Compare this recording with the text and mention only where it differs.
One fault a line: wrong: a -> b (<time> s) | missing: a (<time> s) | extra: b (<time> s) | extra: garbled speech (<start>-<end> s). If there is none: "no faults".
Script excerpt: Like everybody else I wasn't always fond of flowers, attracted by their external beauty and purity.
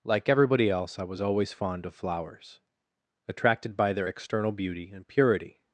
wrong: wasn't -> was (1.0 s)